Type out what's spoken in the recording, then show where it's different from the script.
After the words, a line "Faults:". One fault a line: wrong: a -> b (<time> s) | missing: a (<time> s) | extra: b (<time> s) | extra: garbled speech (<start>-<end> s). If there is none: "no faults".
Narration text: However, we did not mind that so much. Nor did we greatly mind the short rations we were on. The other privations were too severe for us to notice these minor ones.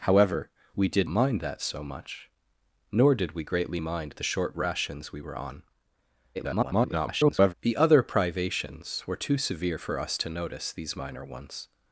However, we did mind that so much. Nor did we greatly mind the short rations we were on. [garbled] The other privations were too severe for us to notice these minor ones.
Faults:
missing: not (1.1 s)
extra: garbled speech (6.3-7.5 s)